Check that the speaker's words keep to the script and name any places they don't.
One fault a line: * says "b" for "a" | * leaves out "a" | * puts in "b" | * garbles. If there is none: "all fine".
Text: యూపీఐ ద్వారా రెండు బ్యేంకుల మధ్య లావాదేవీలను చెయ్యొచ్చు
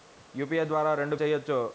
* leaves out "బ్యేంకుల మధ్య లావాదేవీలను"